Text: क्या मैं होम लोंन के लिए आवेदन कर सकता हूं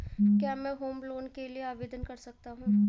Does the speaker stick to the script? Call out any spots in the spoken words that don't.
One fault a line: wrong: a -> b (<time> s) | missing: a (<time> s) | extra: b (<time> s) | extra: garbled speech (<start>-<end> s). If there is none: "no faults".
no faults